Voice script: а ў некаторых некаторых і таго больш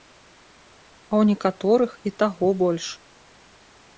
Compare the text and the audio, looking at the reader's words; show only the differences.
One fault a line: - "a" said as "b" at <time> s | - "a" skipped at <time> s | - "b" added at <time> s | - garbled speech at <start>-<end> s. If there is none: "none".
- "некаторых" skipped at 1.9 s